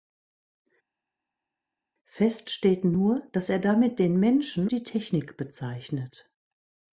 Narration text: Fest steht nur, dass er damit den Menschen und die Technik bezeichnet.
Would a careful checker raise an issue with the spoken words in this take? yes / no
yes